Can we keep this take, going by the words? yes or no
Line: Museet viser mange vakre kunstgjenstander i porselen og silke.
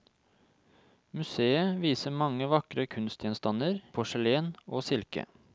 no